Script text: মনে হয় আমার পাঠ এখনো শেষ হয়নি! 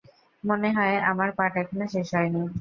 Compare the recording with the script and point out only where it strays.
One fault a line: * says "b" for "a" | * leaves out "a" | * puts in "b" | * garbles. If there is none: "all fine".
all fine